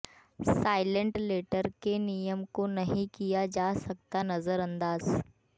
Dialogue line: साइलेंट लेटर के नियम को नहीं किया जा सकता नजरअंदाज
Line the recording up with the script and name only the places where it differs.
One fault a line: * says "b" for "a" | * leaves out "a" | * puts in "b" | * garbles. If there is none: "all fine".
all fine